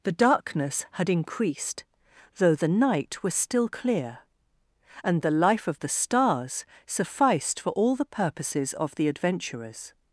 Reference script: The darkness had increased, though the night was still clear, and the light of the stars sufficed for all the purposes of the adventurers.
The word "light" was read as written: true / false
false